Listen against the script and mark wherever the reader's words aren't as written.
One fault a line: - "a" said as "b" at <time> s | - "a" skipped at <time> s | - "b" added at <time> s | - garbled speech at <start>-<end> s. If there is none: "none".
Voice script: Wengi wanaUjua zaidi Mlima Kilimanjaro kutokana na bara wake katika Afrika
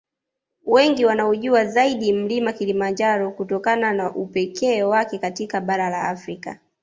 - "bara" said as "upekee" at 4.1 s
- "bara la" added at 5.6 s